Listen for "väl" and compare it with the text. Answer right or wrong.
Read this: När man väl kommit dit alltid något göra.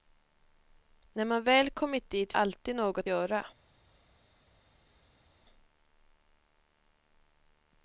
right